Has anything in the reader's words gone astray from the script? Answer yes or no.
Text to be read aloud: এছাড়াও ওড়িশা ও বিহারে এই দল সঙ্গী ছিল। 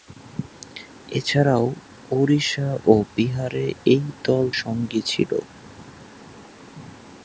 no